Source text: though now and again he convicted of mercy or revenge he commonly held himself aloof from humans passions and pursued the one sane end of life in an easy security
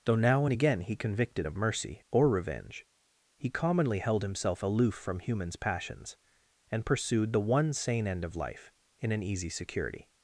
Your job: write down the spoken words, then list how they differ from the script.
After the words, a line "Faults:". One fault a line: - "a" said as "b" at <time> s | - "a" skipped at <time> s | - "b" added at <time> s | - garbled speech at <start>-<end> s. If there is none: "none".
though now and again he convicted of mercy or revenge he commonly held himself aloof from humans passions and pursued the one sane end of life in an easy security
Faults:
none